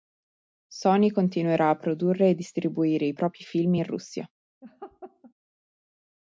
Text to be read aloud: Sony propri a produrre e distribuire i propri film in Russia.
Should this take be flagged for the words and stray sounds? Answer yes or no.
yes